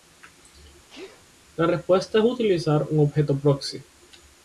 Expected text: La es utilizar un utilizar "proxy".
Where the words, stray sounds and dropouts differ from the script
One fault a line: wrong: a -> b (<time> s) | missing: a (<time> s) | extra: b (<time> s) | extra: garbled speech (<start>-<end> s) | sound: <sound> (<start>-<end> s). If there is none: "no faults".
sound: sneeze (0.9-1.2 s)
extra: respuesta (1.7 s)
wrong: utilizar -> objeto (3.0 s)